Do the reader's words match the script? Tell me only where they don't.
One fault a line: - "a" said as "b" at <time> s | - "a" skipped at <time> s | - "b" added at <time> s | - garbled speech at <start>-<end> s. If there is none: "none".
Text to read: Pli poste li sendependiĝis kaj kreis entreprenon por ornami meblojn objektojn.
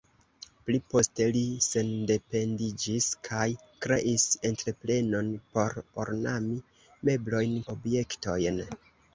none